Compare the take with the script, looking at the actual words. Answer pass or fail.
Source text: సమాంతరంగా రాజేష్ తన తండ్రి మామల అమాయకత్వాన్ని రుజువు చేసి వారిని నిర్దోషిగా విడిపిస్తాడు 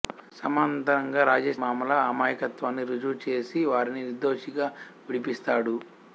fail